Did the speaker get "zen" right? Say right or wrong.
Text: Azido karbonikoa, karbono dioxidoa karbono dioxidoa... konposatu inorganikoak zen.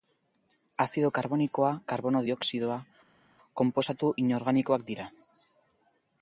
wrong